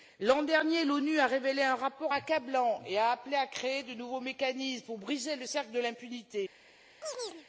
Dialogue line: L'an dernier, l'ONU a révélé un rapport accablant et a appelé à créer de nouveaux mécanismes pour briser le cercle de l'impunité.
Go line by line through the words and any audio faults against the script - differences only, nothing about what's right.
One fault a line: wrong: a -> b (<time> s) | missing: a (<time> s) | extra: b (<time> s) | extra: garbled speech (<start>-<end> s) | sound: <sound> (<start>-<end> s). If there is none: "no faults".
sound: chirp (7.0-7.5 s)